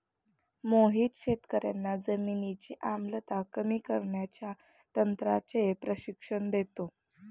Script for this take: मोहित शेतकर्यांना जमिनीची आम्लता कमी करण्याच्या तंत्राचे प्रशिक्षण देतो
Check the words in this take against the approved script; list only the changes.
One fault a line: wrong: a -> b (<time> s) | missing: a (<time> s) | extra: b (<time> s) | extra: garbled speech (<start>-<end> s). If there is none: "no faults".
no faults